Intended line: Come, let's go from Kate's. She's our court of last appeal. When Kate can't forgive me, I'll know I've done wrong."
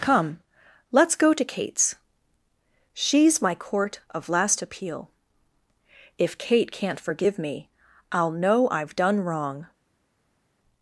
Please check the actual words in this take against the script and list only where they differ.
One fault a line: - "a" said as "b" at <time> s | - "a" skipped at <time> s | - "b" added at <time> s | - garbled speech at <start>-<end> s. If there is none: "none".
- "from" said as "to" at 1.3 s
- "our" said as "my" at 3.4 s
- "When" said as "If" at 6.2 s